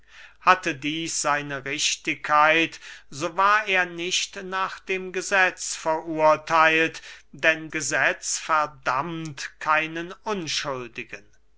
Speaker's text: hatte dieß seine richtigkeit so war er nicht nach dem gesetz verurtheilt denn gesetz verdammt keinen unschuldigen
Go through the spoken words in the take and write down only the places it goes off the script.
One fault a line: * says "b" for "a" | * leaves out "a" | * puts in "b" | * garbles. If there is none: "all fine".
all fine